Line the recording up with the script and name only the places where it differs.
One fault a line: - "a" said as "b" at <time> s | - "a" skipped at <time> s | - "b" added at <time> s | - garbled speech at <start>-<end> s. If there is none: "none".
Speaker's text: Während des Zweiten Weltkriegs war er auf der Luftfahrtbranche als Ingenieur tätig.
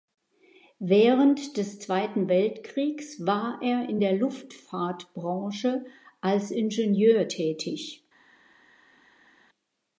- "auf" said as "in" at 3.9 s